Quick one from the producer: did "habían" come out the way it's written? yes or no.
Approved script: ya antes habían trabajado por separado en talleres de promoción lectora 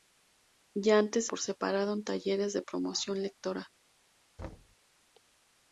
no